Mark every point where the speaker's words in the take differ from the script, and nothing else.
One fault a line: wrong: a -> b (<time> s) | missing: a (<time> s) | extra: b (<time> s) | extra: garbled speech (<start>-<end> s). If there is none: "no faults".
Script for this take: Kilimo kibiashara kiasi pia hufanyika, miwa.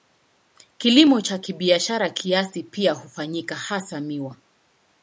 extra: cha (1.2 s)
extra: hasa (3.6 s)